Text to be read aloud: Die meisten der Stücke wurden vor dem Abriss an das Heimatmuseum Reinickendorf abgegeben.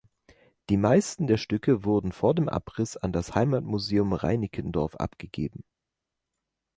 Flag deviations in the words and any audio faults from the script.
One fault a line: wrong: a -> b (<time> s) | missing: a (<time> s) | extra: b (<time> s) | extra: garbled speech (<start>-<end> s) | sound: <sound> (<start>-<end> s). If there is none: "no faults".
no faults